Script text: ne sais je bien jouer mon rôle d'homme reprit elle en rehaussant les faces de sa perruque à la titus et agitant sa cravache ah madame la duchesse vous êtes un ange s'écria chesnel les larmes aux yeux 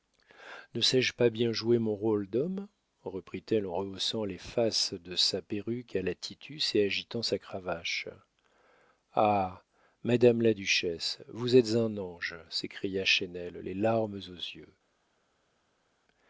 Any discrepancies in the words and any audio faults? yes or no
yes